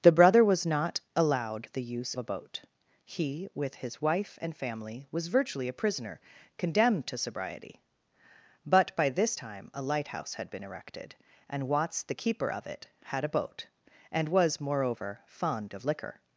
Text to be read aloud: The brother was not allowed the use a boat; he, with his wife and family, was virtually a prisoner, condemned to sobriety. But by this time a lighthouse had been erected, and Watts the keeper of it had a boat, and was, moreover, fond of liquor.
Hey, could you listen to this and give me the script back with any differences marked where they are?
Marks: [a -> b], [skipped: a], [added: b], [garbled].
The brother was not allowed the use a boat; he, with his wife and family, was virtually a prisoner, condemned to sobriety. But by this time a lighthouse had been erected, and Watts the keeper of it had a boat, and was, moreover, fond of liquor.